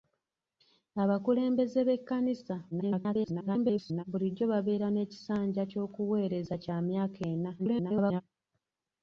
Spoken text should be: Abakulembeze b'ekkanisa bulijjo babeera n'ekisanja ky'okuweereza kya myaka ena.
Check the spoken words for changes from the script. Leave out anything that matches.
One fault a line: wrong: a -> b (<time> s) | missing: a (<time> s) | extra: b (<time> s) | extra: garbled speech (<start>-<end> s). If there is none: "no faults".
extra: garbled speech (2.7-4.0 s)
extra: garbled speech (7.6-8.2 s)